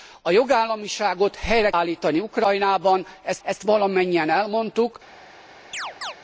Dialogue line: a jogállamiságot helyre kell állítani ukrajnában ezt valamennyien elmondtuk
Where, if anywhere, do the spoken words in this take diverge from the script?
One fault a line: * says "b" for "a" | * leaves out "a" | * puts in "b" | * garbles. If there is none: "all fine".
* leaves out "kell"
* puts in "ezt"